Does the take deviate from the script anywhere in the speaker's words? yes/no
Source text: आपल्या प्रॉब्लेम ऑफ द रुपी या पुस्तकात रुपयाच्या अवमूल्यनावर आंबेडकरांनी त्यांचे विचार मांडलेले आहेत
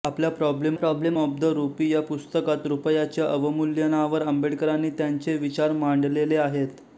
yes